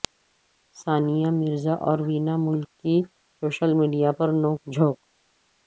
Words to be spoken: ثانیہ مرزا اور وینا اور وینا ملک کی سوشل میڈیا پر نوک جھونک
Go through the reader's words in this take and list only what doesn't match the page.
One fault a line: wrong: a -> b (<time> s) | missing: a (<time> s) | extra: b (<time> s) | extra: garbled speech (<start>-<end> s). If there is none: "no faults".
missing: اور وینا (2.4 s)